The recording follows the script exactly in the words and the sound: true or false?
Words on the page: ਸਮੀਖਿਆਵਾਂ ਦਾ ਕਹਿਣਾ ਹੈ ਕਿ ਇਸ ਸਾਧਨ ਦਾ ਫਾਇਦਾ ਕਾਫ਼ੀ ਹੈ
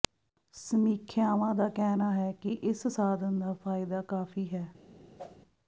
false